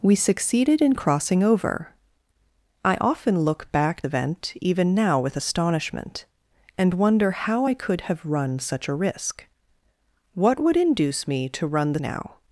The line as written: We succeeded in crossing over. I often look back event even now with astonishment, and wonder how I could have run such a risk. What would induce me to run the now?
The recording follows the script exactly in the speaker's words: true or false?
true